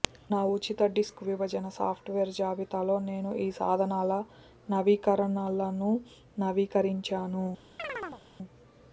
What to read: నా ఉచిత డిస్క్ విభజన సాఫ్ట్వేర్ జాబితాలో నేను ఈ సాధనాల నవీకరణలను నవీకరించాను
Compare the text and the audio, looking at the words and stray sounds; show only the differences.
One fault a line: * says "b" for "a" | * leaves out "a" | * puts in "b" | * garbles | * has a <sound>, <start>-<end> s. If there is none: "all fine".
* has a chirp, 7.8-8.2 s